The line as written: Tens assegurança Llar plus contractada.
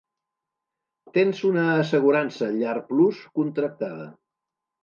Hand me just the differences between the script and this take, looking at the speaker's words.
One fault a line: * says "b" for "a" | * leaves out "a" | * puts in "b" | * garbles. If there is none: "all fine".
* puts in "una"